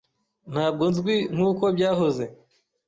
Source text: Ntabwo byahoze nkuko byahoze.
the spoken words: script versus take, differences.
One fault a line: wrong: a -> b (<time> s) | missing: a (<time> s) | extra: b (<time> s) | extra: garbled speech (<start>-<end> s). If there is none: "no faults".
wrong: byahoze -> nzwi (0.9 s)